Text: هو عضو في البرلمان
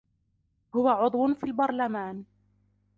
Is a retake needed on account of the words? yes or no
no